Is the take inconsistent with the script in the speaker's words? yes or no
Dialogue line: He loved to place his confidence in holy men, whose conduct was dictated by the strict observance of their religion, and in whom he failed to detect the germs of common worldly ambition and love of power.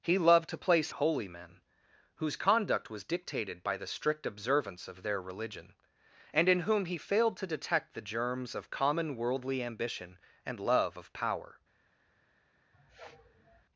yes